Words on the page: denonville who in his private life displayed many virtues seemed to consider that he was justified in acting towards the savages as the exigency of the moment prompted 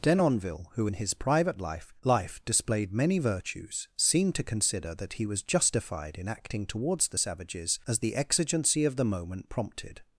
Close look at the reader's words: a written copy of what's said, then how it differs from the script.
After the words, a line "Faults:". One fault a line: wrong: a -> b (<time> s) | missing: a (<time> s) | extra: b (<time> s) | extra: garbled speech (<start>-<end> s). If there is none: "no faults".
denonville who in his private life life displayed many virtues seemed to consider that he was justified in acting towards the savages as the exigency of the moment prompted
Faults:
extra: life (2.0 s)